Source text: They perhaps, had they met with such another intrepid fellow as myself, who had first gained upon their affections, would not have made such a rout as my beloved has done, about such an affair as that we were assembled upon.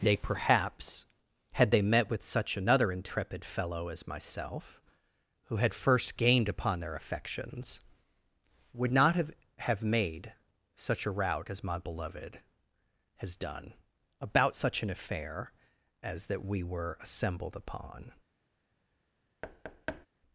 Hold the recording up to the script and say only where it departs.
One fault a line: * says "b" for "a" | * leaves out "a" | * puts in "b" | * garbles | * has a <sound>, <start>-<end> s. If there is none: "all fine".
* puts in "have"
* has a thud, 19.4-20.1 s